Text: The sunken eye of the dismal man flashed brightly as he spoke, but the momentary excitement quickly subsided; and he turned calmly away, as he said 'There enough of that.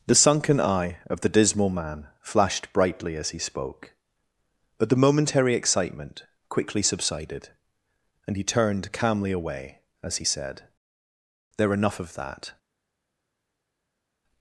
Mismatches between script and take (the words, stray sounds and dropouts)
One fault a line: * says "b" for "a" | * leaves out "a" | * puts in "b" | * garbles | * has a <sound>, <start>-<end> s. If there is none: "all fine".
all fine